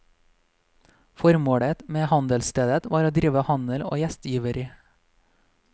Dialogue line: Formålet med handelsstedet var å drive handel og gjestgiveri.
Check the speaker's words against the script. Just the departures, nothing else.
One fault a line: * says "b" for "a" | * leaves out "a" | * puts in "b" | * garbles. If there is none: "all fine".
all fine